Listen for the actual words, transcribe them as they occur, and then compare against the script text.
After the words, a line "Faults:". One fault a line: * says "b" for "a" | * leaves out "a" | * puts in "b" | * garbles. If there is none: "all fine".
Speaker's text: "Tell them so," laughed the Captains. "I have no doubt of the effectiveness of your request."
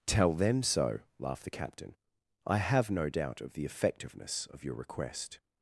"Tell them so," laughed the Captain. "I have no doubt of the effectiveness of your request."
Faults:
* says "Captain" for "Captains"